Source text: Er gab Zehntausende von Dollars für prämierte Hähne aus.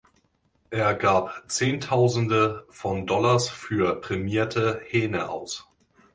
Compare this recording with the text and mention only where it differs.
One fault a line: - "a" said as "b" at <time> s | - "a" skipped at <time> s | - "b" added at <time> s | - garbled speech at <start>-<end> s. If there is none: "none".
none